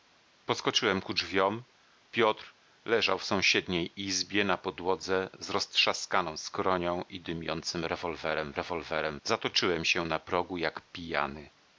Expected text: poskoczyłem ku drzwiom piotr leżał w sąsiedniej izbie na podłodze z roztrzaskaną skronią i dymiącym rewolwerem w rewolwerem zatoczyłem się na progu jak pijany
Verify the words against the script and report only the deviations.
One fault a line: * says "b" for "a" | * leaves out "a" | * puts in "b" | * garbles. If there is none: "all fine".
all fine